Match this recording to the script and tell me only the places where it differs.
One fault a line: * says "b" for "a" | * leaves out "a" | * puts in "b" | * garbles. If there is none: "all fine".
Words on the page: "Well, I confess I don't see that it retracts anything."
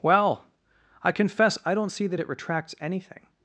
all fine